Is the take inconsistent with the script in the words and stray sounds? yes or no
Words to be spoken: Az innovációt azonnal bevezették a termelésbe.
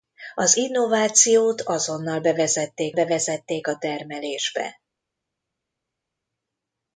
yes